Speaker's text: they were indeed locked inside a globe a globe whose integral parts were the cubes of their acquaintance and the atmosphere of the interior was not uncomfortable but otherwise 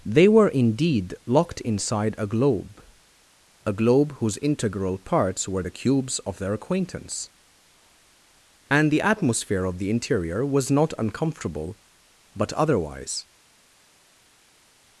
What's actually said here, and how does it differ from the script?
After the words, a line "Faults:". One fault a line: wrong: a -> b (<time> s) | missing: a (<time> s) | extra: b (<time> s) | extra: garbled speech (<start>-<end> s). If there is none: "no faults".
they were indeed locked inside a globe a globe whose integral parts were the cubes of their acquaintance and the atmosphere of the interior was not uncomfortable but otherwise
Faults:
no faults